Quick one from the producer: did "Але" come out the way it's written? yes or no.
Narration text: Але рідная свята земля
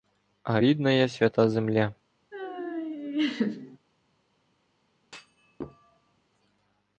no